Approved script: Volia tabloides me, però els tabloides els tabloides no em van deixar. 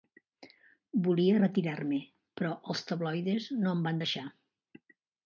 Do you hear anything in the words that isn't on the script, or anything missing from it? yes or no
yes